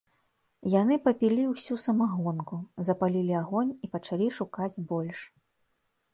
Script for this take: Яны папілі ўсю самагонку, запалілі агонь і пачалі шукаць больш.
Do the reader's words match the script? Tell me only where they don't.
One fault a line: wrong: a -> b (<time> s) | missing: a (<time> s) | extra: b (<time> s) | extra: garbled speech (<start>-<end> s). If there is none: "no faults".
no faults